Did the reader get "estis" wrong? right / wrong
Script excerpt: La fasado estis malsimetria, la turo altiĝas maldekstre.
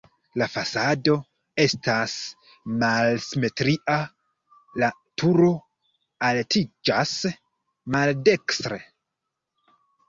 wrong